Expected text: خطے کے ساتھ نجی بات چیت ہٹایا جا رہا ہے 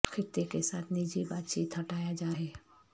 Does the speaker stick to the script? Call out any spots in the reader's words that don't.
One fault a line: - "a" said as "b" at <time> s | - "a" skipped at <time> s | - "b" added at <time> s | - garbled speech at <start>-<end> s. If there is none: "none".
- "رہا" skipped at 2.3 s